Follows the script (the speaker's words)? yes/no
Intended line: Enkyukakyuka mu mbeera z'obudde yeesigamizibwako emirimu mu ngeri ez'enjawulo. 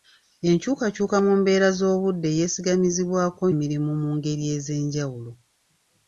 yes